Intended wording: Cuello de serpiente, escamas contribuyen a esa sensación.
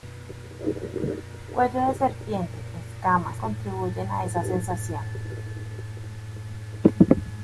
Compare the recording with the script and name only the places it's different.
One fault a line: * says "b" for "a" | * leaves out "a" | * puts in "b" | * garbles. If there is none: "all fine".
all fine